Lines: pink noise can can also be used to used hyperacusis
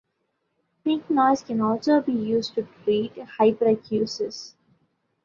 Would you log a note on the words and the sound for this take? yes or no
yes